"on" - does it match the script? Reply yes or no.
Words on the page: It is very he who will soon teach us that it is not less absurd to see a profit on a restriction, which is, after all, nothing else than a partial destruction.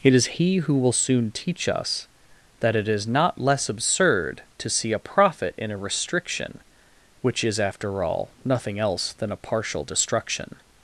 no